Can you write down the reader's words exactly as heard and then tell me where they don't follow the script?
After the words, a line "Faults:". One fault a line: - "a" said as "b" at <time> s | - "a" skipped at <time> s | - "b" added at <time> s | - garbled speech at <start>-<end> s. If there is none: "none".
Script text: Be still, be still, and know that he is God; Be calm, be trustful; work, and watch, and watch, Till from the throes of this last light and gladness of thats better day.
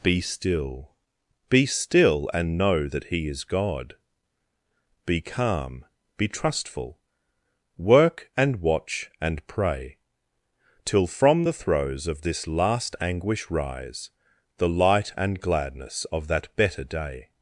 Be still, be still, and know that he is God; Be calm, be trustful; work, and watch, and pray, Till from the throes of this last anguish rise The light and gladness of that better day.
Faults:
- "watch" said as "pray" at 9.4 s
- "anguish rise The" added at 13.0 s
- "thats" said as "that" at 16.3 s